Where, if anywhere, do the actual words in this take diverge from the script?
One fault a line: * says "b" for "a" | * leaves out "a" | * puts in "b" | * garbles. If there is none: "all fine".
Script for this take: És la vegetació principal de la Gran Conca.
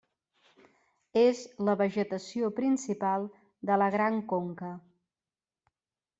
all fine